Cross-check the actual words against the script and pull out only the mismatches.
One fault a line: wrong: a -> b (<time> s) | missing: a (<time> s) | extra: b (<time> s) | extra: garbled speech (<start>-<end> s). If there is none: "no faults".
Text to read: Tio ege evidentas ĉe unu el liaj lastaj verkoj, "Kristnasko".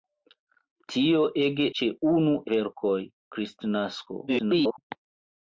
missing: evidentas (1.6 s)
missing: el liaj lastaj (2.3 s)
extra: garbled speech (4.3-4.8 s)